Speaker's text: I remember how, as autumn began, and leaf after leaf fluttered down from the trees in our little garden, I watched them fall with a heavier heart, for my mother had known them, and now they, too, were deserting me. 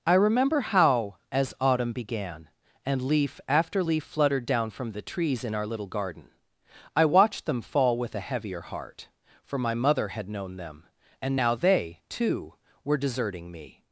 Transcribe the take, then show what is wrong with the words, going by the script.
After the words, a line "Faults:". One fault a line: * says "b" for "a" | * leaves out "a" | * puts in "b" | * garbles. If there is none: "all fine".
I remember how, as autumn began, and leaf after leaf fluttered down from the trees in our little garden, I watched them fall with a heavier heart, for my mother had known them, and now they, too, were deserting me.
Faults:
all fine